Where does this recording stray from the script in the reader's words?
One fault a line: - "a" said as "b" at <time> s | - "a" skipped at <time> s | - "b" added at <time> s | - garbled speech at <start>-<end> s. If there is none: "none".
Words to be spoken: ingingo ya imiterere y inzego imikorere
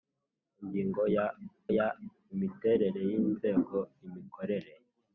- "ya" added at 1.8 s